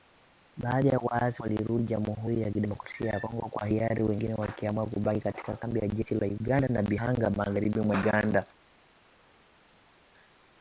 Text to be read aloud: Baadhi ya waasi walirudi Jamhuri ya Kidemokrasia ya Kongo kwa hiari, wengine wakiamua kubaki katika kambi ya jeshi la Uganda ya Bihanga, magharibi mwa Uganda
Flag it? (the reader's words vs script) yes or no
no